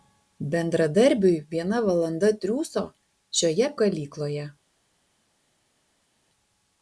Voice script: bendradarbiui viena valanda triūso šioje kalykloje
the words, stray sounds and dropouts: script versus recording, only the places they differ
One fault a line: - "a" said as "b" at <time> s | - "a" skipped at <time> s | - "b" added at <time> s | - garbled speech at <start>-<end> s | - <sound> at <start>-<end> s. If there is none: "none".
none